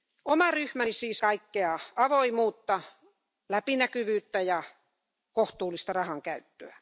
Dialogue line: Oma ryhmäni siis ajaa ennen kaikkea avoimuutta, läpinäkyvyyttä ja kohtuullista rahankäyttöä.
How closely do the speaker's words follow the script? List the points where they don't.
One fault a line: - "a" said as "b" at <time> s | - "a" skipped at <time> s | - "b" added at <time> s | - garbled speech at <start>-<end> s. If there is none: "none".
- "ajaa ennen" skipped at 1.2 s